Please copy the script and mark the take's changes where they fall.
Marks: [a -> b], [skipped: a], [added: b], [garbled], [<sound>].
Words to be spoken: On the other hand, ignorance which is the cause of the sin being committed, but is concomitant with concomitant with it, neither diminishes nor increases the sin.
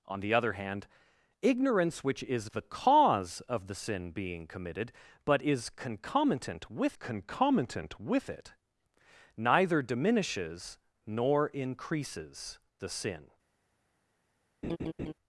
On the other hand, ignorance which is the cause of the sin being committed, but is concomitant with concomitant with it, neither diminishes nor increases the sin. [laugh]